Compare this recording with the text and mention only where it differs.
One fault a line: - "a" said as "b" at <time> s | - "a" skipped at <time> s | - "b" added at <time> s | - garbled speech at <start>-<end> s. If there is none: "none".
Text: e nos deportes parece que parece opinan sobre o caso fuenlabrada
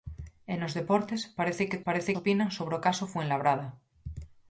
none